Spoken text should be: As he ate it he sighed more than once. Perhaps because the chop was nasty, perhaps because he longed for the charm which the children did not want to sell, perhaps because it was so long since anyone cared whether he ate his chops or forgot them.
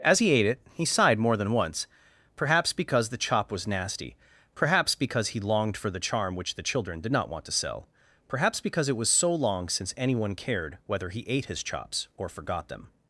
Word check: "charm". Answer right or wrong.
right